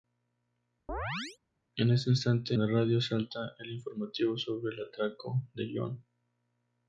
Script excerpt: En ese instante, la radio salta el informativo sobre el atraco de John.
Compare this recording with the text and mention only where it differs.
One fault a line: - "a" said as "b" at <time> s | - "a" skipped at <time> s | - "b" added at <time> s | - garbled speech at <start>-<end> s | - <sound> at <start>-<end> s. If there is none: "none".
- chirp at 0.9-1.4 s